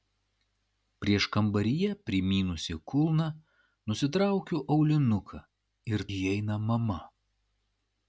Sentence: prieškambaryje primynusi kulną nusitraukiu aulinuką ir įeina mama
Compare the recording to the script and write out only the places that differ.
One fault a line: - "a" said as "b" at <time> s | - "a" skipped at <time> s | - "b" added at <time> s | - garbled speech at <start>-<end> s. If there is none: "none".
none